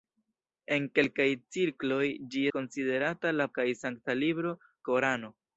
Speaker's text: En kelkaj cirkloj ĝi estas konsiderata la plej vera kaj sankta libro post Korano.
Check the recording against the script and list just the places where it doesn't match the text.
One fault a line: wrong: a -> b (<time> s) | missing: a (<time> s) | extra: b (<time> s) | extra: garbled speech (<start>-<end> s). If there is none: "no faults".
missing: estas (2.4 s)
missing: plej vera (3.5 s)
missing: post (4.6 s)